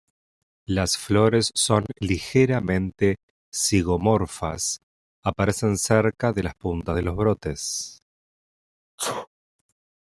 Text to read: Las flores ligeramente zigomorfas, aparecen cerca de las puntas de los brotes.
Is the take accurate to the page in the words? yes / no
no